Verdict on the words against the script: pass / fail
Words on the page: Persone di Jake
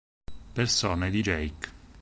pass